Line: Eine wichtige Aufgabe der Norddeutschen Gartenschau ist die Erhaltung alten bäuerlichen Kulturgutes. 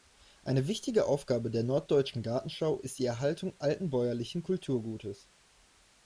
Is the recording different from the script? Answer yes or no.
no